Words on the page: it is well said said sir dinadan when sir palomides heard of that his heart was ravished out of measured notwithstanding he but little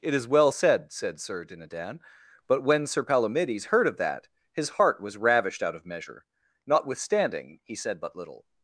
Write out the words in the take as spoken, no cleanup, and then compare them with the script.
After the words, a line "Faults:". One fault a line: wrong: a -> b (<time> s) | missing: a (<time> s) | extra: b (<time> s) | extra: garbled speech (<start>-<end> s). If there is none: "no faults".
it is well said said sir dinadan but when sir palomides heard of that his heart was ravished out of measure notwithstanding he said but little
Faults:
extra: but (2.5 s)
wrong: measured -> measure (5.9 s)
extra: said (7.8 s)